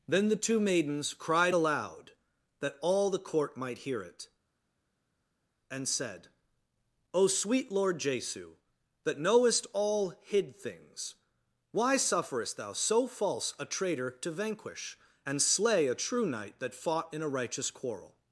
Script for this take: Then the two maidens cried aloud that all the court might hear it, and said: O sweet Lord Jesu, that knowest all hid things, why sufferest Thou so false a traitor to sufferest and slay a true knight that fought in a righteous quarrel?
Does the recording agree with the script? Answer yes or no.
no